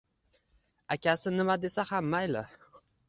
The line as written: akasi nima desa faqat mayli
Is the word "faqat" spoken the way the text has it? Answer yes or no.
no